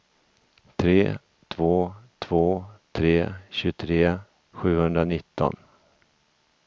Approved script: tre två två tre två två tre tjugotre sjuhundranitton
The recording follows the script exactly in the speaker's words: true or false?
false